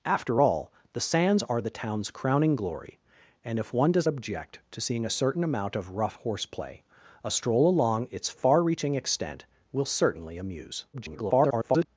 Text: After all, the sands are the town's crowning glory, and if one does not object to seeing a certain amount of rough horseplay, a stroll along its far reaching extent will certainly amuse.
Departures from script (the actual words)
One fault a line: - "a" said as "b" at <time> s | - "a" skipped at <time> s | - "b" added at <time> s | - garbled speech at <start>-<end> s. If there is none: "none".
- "not" skipped at 4.1 s
- garbled speech at 10.9-11.9 s